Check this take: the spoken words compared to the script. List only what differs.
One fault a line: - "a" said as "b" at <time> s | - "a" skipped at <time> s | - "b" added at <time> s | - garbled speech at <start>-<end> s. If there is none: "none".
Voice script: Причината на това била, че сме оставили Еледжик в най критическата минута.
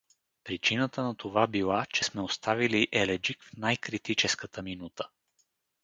none